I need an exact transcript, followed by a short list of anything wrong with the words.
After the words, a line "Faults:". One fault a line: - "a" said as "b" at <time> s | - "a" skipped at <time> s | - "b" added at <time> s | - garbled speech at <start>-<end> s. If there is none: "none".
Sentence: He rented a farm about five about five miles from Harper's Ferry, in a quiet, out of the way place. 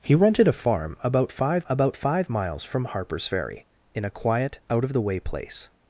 He rented a farm about five about five miles from Harper's Ferry, in a quiet, out of the way place.
Faults:
none